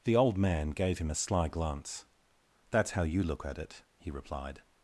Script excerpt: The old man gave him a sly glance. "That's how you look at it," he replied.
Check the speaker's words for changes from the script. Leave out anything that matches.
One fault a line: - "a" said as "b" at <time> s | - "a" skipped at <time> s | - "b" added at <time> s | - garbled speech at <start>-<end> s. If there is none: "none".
none